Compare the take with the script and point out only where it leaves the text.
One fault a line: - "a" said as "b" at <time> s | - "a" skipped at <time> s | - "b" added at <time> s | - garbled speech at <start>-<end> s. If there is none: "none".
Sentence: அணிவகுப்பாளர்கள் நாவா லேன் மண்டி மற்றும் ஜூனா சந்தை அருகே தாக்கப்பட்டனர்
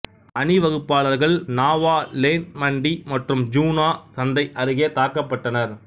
none